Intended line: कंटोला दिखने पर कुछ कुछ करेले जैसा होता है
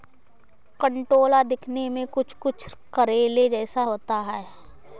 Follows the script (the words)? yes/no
no